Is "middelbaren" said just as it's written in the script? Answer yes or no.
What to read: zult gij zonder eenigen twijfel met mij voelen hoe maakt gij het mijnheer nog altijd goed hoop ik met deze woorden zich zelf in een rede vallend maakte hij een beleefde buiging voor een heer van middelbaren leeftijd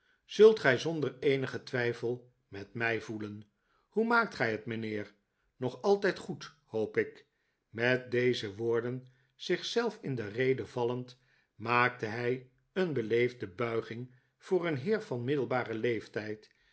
yes